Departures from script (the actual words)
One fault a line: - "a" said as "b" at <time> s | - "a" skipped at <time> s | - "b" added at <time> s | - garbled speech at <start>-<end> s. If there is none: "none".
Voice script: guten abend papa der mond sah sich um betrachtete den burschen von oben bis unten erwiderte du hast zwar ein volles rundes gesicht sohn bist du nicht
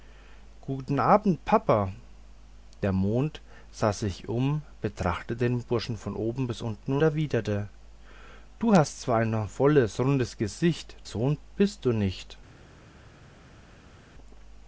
none